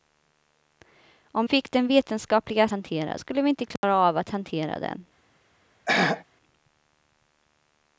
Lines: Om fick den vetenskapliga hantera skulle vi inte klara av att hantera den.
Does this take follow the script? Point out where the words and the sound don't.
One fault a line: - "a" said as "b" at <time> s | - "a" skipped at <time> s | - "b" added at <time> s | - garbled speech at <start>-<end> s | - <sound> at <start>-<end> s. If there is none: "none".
- dropout at 3.8-3.8 s
- throat clearing at 5.9-6.2 s